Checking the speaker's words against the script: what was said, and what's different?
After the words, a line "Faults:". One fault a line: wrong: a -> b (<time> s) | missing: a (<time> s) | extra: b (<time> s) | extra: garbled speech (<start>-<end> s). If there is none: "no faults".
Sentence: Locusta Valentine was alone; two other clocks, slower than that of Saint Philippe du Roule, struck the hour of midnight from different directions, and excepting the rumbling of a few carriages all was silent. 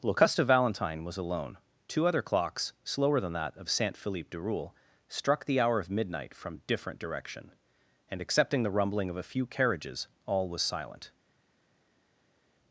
Locusta Valentine was alone; two other clocks, slower than that of Saint Philippe du Roule, struck the hour of midnight from different direction, and excepting the rumbling of a few carriages all was silent.
Faults:
wrong: directions -> direction (7.0 s)